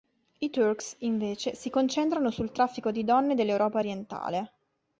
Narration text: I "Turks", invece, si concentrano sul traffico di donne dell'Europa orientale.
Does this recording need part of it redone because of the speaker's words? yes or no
no